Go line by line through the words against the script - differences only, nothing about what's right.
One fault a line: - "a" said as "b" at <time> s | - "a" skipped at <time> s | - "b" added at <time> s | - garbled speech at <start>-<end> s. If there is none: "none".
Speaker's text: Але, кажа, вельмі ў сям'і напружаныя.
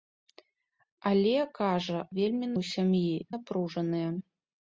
none